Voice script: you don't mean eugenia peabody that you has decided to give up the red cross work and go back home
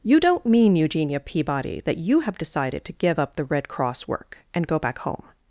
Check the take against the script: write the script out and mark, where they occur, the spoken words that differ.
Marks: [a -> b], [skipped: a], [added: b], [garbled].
you don't mean eugenia peabody that you [has -> have] decided to give up the red cross work and go back home